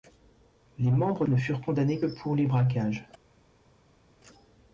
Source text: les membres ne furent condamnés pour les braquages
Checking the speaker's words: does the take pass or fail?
pass